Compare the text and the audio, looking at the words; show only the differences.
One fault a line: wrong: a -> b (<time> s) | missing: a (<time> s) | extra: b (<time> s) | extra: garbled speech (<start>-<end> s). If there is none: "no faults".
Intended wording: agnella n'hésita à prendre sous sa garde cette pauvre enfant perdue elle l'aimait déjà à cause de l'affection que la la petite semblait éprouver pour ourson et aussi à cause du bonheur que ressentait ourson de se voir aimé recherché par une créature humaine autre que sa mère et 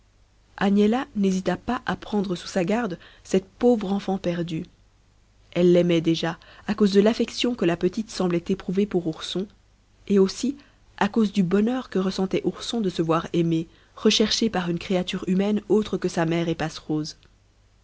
extra: pas (1.6 s)
missing: la (7.8 s)